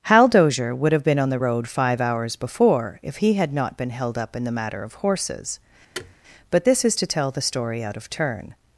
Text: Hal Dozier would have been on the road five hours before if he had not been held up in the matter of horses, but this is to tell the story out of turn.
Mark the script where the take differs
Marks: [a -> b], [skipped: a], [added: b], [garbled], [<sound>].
Hal Dozier would have been on the road five hours before if he had not been held up in the matter of horses, [thud] but this is to tell the story out of turn.